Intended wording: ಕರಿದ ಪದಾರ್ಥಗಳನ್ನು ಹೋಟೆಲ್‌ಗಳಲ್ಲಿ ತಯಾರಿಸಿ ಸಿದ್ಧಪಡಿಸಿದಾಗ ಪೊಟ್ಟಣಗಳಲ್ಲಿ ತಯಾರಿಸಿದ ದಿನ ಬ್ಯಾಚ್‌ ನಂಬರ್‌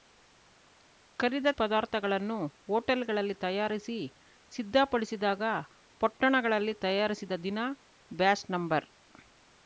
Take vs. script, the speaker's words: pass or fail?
pass